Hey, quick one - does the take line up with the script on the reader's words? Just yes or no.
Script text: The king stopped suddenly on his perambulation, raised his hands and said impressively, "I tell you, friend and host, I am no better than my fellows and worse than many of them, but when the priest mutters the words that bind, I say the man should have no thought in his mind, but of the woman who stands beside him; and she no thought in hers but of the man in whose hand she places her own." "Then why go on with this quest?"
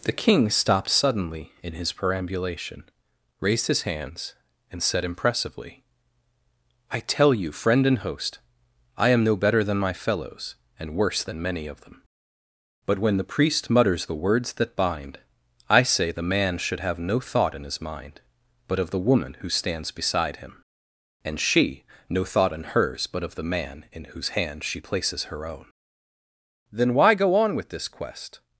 no